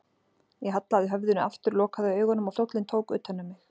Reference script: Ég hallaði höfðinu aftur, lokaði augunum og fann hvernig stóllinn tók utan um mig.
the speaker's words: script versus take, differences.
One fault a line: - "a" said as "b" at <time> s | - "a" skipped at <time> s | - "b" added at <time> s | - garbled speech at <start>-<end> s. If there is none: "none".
- "fann hvernig" skipped at 2.6 s